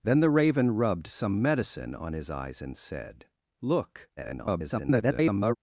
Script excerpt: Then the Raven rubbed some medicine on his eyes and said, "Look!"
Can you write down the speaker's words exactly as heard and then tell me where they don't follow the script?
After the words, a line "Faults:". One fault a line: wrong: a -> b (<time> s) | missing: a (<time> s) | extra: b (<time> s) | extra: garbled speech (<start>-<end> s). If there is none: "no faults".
Then the Raven rubbed some medicine on his eyes and said, "Look!" [garbled]
Faults:
extra: garbled speech (4.2-5.6 s)